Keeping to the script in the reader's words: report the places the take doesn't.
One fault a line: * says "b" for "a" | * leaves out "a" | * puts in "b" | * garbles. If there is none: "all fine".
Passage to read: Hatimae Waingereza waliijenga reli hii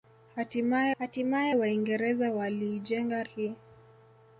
* puts in "hatimae"
* leaves out "reli"